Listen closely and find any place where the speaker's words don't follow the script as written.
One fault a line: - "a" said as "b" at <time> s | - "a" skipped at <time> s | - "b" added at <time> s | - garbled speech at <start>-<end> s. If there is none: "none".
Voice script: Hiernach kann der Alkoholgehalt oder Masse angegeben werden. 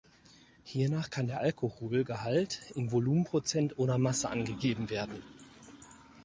- "in Volumenprozent" added at 2.7 s